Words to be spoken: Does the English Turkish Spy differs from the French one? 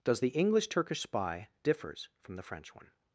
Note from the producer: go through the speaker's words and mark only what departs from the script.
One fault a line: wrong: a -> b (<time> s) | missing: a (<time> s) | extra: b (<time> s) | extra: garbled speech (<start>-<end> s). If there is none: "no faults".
no faults